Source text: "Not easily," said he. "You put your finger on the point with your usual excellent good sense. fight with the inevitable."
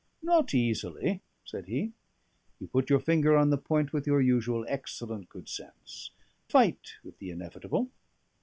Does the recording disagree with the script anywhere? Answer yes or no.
no